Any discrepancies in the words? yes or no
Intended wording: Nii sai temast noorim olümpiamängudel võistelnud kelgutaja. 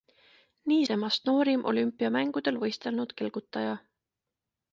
yes